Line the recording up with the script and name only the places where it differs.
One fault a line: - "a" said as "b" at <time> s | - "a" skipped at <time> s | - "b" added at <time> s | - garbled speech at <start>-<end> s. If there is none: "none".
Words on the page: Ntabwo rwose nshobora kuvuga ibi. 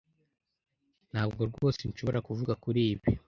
- "kuri" added at 2.6 s